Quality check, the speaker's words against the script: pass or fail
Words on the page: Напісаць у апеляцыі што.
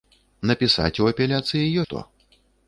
pass